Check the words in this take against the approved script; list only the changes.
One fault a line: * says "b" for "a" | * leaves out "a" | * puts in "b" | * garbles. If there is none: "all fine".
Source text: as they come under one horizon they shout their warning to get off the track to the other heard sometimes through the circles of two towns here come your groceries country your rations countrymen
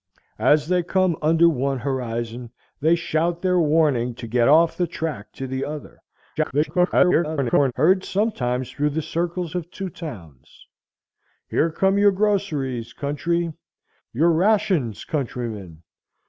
* garbles